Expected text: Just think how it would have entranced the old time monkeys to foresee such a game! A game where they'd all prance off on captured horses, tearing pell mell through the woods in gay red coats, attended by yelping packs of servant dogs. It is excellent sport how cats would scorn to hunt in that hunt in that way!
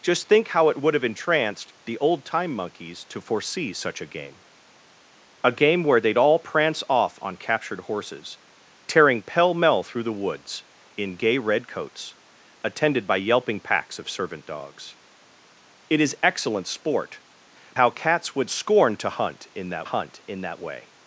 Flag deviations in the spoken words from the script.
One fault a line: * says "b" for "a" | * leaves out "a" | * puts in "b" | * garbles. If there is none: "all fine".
all fine